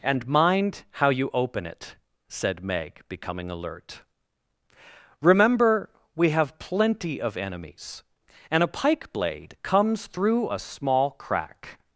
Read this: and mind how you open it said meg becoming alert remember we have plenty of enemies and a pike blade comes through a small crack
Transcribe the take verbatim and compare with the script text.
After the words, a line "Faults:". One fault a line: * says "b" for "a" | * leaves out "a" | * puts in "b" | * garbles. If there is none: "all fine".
and mind how you open it said meg becoming alert remember we have plenty of enemies and a pike blade comes through a small crack
Faults:
all fine